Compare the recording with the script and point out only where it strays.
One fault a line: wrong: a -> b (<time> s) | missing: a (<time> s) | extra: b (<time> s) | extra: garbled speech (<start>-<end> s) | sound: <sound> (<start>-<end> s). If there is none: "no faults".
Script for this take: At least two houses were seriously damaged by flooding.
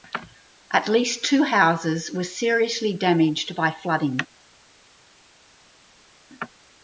no faults